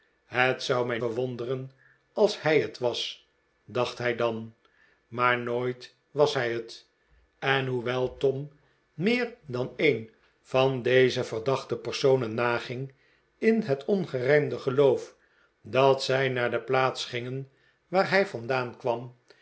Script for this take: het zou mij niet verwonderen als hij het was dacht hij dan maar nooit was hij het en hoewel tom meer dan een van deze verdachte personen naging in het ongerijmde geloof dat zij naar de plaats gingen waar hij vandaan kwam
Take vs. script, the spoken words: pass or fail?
fail